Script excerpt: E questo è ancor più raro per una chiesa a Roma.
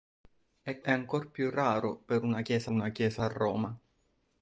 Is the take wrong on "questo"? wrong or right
wrong